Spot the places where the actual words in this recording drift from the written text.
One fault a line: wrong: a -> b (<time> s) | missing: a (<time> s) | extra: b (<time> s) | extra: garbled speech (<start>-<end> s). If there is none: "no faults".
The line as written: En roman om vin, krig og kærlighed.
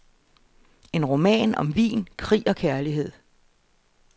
no faults